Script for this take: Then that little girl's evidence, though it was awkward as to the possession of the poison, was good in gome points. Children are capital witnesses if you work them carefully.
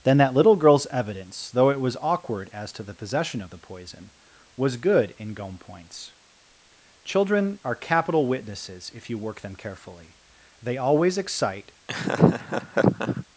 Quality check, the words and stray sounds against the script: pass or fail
fail